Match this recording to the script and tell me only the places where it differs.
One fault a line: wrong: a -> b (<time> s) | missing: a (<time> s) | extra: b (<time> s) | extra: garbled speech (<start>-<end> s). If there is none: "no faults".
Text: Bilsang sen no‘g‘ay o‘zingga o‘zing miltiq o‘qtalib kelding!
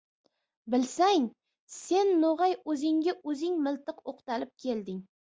no faults